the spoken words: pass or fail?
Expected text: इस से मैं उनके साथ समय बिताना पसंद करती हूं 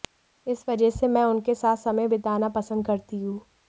fail